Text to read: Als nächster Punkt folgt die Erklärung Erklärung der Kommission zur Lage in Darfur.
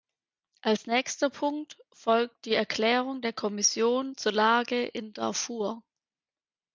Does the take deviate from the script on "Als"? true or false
false